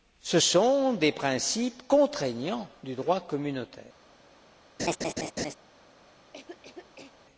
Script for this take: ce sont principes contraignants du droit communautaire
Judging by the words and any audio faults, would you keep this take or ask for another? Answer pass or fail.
fail